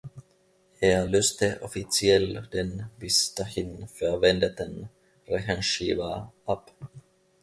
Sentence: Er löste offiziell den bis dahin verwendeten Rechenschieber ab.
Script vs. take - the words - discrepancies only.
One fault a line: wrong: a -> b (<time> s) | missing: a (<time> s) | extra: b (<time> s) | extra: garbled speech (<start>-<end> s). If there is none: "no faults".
no faults